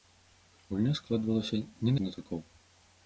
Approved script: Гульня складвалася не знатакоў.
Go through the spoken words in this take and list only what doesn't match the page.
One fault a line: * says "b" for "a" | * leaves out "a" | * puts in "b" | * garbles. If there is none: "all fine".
all fine